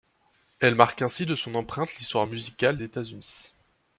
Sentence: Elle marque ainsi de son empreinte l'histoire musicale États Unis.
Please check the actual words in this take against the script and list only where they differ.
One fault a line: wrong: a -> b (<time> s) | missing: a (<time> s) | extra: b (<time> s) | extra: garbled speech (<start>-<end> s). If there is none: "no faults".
no faults